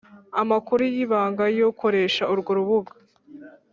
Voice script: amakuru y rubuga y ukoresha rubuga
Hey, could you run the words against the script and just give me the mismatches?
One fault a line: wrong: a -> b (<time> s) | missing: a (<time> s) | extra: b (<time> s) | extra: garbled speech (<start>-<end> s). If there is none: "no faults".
wrong: rubuga -> ibanga (1.0 s)
extra: urwo (2.3 s)